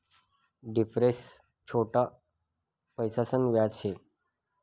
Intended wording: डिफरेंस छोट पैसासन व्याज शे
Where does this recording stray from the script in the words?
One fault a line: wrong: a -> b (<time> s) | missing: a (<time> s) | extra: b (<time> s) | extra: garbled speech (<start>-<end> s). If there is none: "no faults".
no faults